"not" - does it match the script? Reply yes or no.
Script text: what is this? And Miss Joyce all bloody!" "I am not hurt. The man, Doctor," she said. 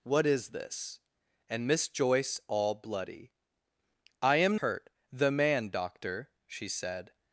no